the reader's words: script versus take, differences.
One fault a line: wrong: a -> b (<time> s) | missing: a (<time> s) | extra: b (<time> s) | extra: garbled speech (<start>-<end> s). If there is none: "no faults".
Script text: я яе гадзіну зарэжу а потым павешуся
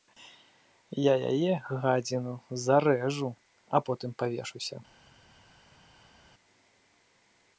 no faults